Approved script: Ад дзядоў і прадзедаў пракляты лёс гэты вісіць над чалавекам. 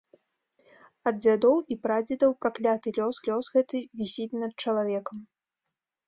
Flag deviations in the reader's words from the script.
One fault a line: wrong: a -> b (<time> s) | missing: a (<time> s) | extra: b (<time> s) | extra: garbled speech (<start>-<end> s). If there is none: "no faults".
extra: лёс (3.3 s)